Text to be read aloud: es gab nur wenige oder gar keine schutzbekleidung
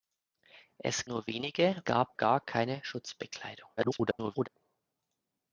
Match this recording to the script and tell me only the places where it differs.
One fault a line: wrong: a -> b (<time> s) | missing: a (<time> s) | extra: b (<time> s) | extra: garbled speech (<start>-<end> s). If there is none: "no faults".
missing: gab (1.1 s)
wrong: oder -> gab (1.8 s)
extra: garbled speech (3.8-4.5 s)